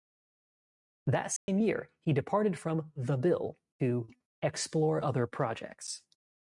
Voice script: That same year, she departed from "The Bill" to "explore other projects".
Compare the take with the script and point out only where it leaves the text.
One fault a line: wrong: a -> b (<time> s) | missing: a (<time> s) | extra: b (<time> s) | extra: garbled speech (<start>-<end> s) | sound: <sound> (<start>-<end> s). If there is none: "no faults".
sound: dropout (1.4-1.5 s)
wrong: she -> he (2.0 s)